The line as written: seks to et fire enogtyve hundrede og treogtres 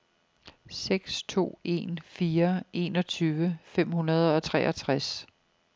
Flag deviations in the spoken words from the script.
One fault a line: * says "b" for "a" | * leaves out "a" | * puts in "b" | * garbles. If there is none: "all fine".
* says "en" for "et"
* puts in "fem"